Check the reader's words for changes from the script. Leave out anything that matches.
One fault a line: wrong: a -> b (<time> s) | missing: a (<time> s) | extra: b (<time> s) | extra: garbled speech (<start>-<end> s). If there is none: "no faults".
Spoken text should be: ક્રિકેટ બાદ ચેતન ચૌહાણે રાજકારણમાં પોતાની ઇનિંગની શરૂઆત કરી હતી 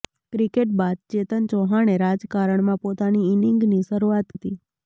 missing: કરી (4.4 s)